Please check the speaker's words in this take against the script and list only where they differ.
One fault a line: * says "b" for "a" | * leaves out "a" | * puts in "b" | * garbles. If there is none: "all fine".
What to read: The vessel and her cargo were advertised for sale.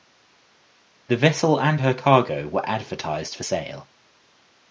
all fine